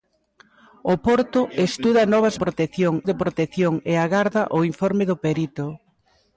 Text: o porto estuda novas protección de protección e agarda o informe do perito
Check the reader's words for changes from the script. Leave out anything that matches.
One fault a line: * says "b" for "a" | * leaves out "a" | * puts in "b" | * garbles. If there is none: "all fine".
all fine